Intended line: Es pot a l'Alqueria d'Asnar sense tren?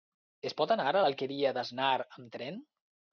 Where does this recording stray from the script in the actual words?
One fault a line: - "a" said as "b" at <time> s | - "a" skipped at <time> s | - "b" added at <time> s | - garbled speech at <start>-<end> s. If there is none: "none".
- "anar" added at 0.8 s
- "sense" said as "amb" at 2.0 s